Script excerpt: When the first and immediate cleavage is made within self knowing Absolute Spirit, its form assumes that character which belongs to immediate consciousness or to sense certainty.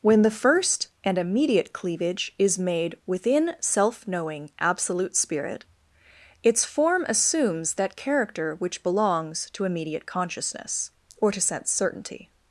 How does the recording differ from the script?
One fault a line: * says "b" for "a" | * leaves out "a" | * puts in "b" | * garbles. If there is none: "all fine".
all fine